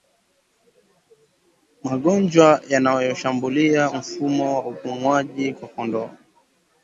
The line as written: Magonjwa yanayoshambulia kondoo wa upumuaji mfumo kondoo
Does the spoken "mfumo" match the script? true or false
false